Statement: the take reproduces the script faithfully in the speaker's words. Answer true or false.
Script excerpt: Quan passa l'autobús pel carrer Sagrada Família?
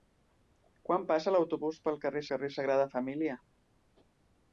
false